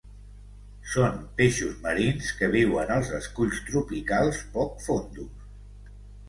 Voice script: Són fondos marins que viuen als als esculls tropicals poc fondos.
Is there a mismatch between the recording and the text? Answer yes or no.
yes